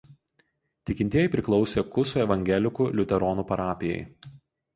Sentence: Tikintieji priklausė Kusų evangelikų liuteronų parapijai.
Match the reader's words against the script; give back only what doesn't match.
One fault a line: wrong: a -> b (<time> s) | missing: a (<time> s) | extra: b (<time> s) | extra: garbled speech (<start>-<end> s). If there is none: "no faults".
no faults